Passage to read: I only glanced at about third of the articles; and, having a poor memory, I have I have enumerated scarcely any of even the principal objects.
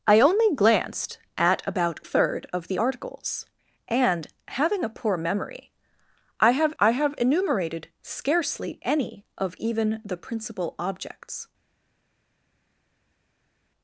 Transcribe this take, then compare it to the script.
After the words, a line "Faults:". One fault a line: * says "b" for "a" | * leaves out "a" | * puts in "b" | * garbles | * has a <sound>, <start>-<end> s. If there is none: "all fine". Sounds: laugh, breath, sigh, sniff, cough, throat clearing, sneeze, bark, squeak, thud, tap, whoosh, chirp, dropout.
I only glanced at about third of the articles; and, having a poor memory, I have I have enumerated scarcely any of even the principal objects.
Faults:
all fine